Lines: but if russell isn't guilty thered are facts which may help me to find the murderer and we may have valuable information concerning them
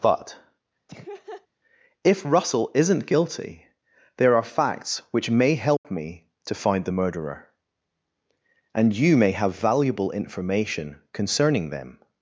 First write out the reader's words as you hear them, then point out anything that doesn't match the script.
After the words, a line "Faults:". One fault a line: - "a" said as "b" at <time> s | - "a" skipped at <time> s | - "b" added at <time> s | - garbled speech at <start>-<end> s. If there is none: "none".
but if russell isn't guilty there are facts which may help me to find the murderer and you may have valuable information concerning them
Faults:
- "thered" said as "there" at 4.2 s
- "we" said as "you" at 8.9 s